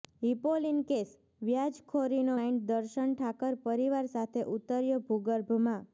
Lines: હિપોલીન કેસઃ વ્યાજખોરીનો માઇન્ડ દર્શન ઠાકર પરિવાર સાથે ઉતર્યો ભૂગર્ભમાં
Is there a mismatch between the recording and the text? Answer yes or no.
no